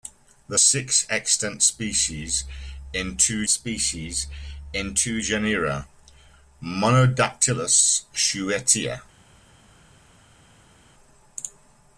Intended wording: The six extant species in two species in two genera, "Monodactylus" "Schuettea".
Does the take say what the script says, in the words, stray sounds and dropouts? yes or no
yes